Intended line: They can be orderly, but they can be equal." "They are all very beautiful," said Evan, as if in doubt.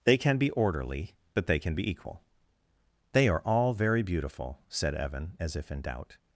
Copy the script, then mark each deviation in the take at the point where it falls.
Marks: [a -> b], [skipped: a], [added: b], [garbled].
They can be orderly, but they can be equal." "They are all very beautiful," said Evan, as if in doubt.